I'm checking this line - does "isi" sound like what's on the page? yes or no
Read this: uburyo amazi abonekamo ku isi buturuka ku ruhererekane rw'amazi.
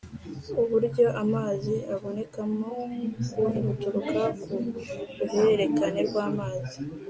no